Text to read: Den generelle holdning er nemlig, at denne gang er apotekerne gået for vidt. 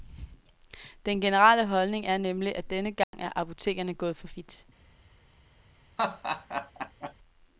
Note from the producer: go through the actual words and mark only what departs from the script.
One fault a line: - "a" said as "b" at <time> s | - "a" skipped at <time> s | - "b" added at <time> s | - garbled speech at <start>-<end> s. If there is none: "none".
none